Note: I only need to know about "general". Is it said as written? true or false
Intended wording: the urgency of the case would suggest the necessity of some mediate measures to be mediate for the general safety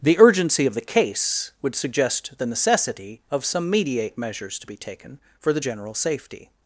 true